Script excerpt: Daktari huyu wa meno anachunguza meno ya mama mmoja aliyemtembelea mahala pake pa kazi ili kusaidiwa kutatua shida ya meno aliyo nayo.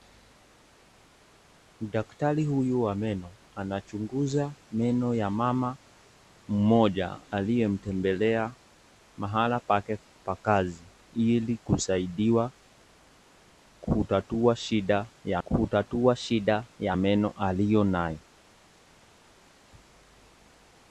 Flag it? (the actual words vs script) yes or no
yes